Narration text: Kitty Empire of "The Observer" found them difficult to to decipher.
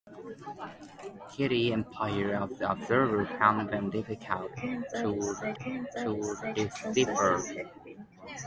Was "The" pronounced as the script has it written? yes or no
yes